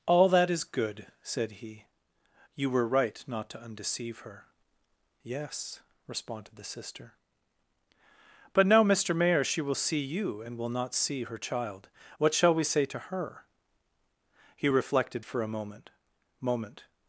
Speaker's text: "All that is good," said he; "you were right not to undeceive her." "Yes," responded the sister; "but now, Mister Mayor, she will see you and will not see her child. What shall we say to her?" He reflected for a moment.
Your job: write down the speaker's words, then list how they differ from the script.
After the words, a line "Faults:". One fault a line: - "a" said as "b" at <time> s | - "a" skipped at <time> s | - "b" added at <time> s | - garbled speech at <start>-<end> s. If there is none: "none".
"All that is good," said he; "you were right not to undeceive her." "Yes," responded the sister; "but now, Mister Mayor, she will see you and will not see her child. What shall we say to her?" He reflected for a moment moment.
Faults:
- "moment" added at 16.4 s